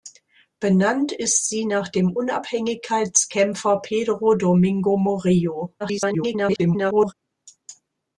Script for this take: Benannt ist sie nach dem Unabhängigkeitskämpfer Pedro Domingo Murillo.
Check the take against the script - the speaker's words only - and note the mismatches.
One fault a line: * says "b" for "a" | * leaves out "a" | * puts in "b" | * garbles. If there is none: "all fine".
* garbles